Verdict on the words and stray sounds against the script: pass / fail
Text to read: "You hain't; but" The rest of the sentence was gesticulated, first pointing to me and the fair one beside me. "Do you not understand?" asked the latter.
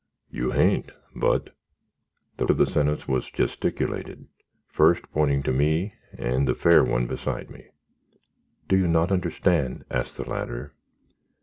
fail